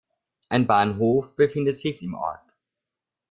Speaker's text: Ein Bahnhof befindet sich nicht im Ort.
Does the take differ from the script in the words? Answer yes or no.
yes